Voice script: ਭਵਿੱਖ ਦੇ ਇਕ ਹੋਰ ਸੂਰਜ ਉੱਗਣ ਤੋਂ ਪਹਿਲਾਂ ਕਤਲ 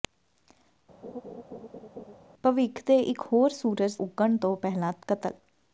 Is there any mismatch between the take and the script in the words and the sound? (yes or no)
yes